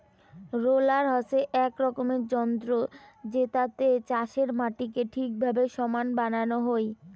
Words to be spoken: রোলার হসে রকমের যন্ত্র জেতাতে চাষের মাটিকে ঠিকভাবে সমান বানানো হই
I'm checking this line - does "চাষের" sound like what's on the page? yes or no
yes